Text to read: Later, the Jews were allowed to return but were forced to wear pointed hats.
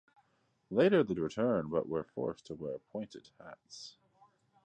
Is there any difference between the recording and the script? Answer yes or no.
yes